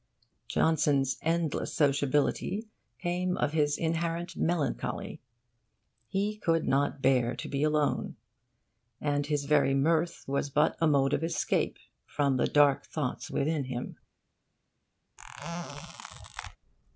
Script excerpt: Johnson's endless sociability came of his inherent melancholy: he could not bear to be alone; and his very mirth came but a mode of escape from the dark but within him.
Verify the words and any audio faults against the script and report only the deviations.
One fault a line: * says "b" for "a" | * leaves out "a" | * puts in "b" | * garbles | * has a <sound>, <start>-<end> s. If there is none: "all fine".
* says "was" for "came"
* says "thoughts" for "but"
* has a squeak, 15.2-16.6 s